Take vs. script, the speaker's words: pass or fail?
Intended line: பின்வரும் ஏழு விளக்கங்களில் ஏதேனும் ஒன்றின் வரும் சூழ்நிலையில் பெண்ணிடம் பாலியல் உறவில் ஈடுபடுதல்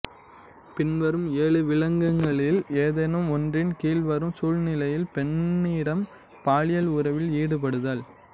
fail